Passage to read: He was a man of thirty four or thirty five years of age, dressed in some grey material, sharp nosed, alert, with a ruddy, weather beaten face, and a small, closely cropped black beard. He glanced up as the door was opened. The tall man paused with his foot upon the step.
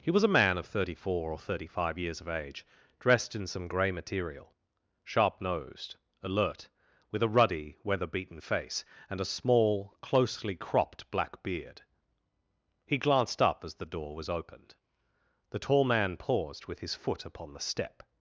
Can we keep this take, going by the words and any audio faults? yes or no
yes